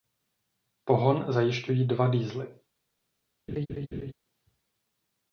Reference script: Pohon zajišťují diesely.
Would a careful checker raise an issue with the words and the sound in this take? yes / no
yes